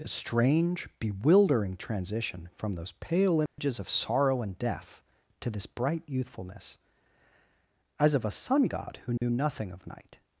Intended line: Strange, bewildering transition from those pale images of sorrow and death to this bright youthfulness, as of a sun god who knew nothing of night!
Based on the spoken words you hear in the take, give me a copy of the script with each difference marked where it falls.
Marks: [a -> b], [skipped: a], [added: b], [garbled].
[added: a] Strange, bewildering transition from those pale images of sorrow and death to this bright youthfulness, as of a sun god who knew nothing of night!